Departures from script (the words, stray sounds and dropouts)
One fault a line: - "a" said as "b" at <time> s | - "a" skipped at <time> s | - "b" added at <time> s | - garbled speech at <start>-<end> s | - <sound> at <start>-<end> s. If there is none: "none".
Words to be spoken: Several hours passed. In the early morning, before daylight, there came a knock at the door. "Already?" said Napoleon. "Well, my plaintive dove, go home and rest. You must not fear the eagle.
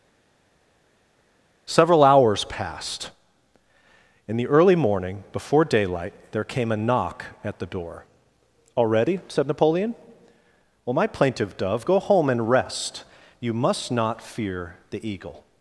none